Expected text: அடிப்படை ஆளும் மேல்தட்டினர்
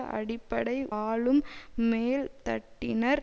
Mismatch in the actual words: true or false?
false